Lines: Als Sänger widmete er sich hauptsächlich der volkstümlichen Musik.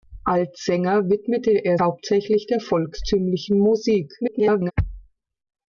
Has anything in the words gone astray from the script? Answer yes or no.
yes